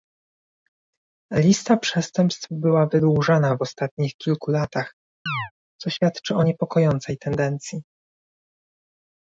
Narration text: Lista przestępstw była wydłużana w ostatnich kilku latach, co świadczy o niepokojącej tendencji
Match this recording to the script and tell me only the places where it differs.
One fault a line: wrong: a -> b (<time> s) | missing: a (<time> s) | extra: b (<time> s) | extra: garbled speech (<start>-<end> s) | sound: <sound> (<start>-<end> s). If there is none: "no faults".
sound: chirp (5.3-5.5 s)